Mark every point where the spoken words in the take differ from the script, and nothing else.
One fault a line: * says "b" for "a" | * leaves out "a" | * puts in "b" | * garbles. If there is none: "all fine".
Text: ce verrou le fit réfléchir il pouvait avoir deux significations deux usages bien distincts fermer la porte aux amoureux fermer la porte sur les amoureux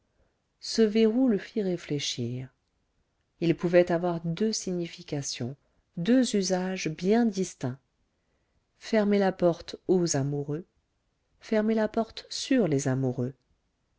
all fine